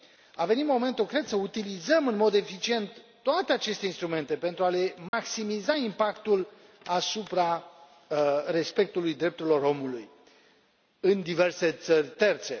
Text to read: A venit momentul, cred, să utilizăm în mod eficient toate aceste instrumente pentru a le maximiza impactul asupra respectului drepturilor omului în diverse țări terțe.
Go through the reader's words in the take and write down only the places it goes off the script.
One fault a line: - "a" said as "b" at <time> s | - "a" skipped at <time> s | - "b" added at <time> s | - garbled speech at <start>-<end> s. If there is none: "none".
none